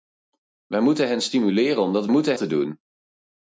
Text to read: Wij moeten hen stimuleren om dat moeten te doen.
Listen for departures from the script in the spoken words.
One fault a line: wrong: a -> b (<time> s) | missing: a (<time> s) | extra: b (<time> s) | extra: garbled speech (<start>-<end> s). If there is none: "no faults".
no faults